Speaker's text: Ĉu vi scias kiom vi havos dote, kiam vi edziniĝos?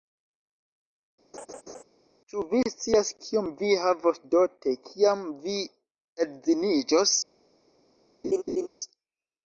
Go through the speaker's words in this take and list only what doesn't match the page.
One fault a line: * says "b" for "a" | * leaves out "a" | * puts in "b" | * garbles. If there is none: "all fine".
all fine